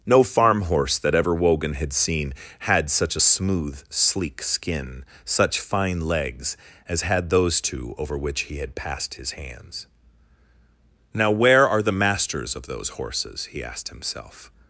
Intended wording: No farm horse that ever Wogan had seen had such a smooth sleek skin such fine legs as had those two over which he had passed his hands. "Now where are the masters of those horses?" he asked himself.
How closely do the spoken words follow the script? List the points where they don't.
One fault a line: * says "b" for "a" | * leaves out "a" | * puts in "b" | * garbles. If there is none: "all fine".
all fine